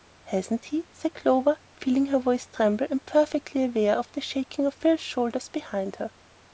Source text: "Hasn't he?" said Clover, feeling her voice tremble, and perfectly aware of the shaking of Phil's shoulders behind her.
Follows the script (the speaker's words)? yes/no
yes